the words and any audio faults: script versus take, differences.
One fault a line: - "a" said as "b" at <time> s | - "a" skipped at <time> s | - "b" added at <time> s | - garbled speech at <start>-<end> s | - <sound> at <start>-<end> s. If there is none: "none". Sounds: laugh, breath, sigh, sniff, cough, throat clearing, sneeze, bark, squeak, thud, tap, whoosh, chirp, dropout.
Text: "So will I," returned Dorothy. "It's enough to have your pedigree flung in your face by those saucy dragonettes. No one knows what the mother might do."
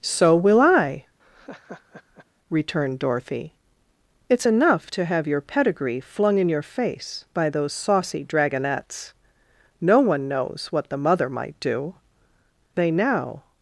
- laugh at 1.2-2.3 s
- "They now" added at 12.7 s